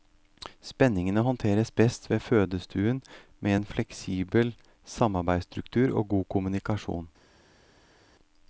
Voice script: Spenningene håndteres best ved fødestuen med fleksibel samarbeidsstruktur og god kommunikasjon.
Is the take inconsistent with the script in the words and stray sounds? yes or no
yes